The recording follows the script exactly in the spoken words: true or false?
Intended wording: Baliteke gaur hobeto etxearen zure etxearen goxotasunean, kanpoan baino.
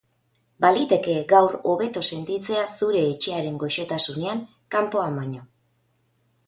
false